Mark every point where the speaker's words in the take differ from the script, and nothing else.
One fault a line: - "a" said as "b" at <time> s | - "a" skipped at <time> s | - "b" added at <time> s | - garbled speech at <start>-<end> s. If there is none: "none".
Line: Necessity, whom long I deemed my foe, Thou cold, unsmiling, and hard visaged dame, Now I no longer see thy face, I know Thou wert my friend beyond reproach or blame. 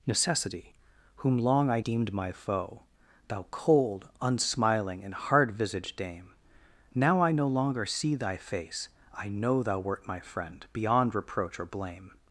none